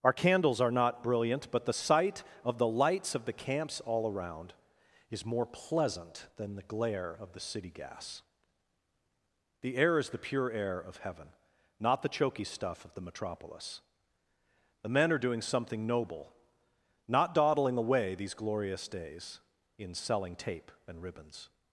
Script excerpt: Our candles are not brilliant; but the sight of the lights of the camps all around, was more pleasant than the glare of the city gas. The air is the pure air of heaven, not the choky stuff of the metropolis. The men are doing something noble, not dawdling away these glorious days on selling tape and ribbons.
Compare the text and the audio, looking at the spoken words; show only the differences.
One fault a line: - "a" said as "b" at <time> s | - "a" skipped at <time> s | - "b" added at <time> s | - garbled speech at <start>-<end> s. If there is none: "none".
- "was" said as "is" at 5.1 s
- "on" said as "in" at 19.8 s